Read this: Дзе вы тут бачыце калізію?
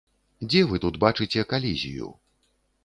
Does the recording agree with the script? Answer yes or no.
yes